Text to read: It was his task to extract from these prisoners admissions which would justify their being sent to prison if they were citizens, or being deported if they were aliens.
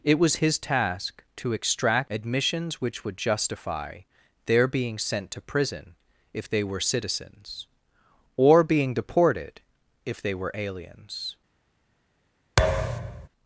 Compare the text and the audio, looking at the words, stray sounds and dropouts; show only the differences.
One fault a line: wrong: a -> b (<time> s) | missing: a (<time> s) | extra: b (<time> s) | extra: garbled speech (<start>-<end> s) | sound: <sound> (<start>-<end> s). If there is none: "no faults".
missing: from these prisoners (2.1 s)
sound: thud (12.6-13.3 s)